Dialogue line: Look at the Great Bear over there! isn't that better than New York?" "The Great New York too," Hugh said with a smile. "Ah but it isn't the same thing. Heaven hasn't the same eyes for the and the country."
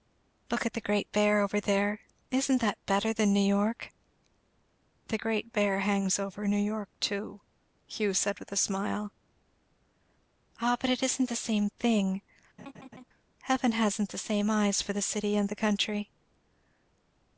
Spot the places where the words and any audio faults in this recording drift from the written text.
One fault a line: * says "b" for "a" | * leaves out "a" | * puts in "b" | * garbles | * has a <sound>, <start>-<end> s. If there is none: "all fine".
* puts in "Bear hangs over"
* has a laugh, 12.6-13.0 s
* puts in "city"